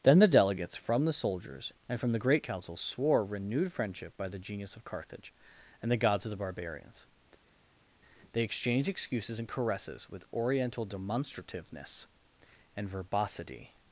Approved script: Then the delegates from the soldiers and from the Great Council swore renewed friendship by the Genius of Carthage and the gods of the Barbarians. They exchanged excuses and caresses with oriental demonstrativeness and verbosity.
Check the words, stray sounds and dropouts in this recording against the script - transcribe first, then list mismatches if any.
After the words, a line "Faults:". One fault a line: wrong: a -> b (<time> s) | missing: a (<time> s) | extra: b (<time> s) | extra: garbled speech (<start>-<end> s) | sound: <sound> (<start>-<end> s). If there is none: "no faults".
Then the delegates from the soldiers and from the Great Council swore renewed friendship by the Genius of Carthage and the gods of the Barbarians. They exchanged excuses and caresses with oriental demonstrativeness and verbosity.
Faults:
no faults